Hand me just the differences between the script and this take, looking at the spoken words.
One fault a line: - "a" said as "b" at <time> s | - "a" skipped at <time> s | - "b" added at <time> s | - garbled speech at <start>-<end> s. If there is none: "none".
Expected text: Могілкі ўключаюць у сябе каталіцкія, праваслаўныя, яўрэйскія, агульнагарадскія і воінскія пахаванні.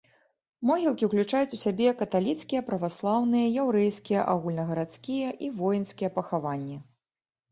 none